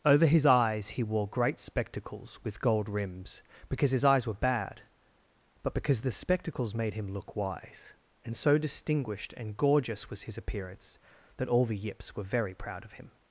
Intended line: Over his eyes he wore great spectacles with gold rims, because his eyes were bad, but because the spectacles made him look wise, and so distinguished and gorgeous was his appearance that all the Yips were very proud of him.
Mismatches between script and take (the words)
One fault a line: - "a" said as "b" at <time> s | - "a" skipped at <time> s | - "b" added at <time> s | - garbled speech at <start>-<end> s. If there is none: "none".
none